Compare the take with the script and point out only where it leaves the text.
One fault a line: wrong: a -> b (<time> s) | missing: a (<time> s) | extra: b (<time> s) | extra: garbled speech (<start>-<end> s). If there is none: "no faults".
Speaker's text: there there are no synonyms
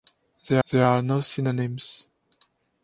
no faults